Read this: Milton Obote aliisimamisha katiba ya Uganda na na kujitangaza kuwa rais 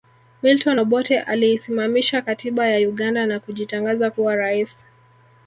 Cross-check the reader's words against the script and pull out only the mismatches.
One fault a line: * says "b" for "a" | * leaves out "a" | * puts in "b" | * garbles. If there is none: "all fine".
* leaves out "na"